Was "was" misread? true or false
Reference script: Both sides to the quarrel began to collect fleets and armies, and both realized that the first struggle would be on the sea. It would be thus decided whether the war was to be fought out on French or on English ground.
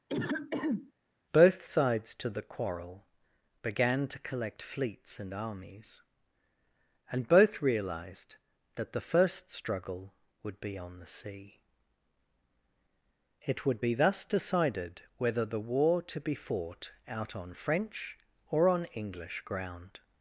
true